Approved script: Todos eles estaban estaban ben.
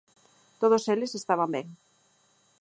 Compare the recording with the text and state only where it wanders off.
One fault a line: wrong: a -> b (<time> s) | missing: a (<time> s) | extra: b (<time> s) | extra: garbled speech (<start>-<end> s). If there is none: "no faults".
missing: estaban (1.5 s)